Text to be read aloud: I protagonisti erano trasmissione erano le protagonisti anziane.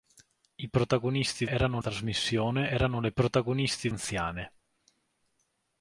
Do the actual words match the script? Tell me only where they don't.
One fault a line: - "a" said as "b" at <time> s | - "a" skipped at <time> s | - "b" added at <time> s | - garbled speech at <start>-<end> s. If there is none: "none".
none